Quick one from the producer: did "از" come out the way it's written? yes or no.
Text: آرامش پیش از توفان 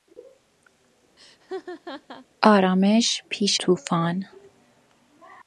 no